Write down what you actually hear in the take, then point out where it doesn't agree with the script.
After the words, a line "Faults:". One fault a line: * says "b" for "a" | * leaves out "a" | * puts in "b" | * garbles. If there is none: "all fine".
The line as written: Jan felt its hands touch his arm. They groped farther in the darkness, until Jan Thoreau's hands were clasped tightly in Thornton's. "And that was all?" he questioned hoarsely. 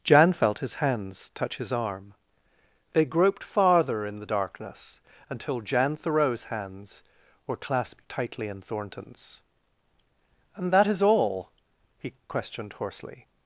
Jan felt his hands touch his arm. They groped farther in the darkness, until Jan Thoreau's hands were clasped tightly in Thornton's. "And that is all?" he questioned hoarsely.
Faults:
* says "his" for "its"
* says "is" for "was"